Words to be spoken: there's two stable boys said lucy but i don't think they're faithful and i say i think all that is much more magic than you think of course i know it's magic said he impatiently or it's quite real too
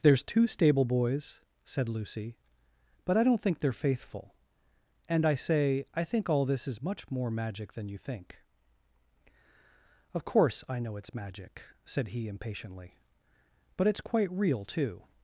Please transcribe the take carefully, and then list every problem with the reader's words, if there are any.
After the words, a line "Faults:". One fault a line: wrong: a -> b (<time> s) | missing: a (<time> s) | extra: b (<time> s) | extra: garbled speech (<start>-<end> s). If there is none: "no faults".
there's two stable boys said lucy but i don't think they're faithful and i say i think all this is much more magic than you think of course i know it's magic said he impatiently but it's quite real too
Faults:
wrong: that -> this (6.5 s)
wrong: or -> but (13.8 s)